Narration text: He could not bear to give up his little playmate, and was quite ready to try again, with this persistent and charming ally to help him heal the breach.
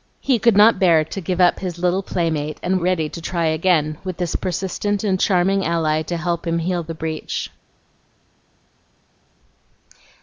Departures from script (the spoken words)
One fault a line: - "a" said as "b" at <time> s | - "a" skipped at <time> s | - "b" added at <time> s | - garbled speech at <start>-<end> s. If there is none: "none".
- "was quite" skipped at 2.8 s